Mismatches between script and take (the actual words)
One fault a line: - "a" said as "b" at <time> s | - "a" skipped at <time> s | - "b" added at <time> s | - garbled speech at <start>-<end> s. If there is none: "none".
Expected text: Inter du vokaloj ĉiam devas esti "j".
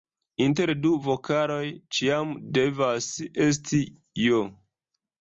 none